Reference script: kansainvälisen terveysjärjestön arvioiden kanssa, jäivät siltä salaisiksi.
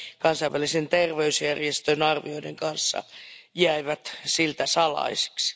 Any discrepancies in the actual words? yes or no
no